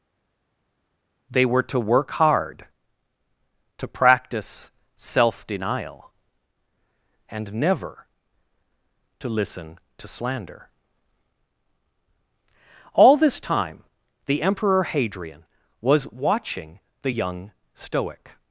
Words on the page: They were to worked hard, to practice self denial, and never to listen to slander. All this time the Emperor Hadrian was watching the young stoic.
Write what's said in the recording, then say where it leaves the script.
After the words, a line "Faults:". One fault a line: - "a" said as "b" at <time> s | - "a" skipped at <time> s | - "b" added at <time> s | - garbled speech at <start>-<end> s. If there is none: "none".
They were to work hard, to practice self denial, and never to listen to slander. All this time the Emperor Hadrian was watching the young stoic.
Faults:
- "worked" said as "work" at 1.8 s